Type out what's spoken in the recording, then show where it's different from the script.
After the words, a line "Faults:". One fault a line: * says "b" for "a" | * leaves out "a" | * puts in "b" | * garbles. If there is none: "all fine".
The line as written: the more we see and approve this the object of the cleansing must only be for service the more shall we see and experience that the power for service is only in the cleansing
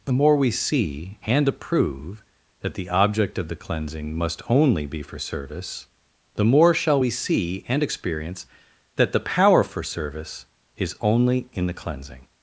the more we see and approve that the object of the cleansing must only be for service the more shall we see and experience that the power for service is only in the cleansing
Faults:
* says "that" for "this"